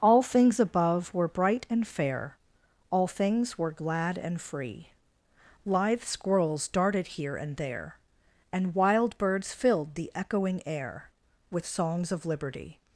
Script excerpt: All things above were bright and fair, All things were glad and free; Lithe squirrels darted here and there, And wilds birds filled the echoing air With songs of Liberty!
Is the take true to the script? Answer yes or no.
no